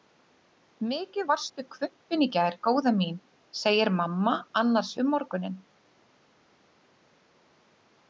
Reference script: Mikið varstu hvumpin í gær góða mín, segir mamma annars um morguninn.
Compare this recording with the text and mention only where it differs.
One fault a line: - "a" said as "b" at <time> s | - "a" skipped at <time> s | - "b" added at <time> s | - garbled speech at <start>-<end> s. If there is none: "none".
none